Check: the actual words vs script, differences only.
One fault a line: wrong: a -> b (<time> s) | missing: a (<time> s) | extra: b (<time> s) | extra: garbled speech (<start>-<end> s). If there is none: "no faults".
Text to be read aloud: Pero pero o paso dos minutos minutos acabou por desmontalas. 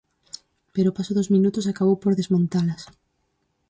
missing: pero (0.9 s)
missing: minutos (1.6 s)